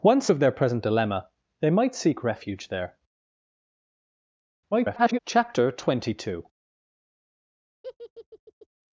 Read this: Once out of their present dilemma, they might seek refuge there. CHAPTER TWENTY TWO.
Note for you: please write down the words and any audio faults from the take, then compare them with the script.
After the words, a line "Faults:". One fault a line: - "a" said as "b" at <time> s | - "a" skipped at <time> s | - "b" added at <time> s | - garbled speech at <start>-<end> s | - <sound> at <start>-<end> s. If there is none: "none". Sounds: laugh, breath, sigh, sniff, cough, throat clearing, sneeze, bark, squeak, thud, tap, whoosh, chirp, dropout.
Once of their present dilemma, they might seek refuge there. [garbled] CHAPTER TWENTY TWO.
Faults:
- "out" skipped at 0.3 s
- garbled speech at 4.7-5.2 s
- laugh at 7.8-8.7 s